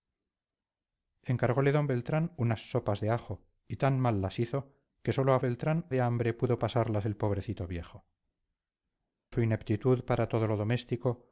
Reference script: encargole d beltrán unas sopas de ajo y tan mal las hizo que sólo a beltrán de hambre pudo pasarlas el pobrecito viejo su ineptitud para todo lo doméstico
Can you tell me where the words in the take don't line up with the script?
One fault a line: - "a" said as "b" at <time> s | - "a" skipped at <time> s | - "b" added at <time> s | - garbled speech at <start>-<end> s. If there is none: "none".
none